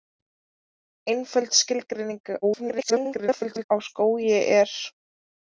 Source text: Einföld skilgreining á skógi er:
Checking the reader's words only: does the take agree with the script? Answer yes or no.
no